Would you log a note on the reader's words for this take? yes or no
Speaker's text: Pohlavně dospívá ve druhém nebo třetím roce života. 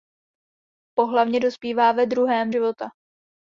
yes